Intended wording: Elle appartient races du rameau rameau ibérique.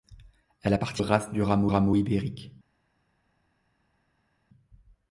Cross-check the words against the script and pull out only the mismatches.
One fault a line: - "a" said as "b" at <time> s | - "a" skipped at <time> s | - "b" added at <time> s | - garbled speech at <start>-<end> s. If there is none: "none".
none